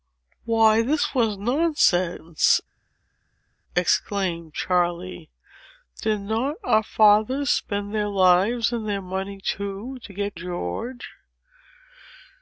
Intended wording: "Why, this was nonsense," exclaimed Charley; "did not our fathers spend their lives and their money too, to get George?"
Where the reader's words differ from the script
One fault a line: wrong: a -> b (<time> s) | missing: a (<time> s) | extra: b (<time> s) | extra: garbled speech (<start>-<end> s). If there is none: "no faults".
no faults